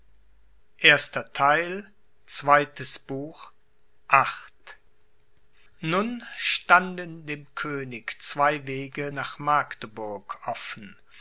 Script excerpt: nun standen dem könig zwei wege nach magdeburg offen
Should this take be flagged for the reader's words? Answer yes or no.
no